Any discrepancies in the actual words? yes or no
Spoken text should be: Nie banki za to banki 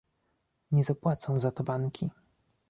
yes